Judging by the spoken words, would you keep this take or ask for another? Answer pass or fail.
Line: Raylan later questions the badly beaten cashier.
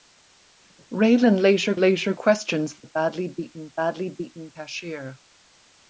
fail